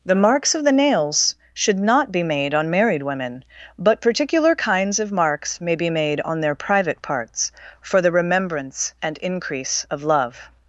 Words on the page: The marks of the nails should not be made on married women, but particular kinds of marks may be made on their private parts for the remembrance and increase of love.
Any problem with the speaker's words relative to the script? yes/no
no